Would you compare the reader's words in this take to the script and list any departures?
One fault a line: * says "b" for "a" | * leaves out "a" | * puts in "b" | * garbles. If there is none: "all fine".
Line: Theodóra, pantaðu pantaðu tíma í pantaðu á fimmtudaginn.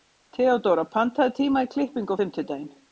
* leaves out "pantaðu"
* says "klippingu" for "pantaðu"